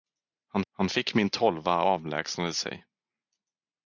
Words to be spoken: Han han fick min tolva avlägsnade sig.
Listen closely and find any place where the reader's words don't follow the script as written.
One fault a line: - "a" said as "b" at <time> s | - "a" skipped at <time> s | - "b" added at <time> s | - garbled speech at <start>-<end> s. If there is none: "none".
none